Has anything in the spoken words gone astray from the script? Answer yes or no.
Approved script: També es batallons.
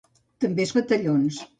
no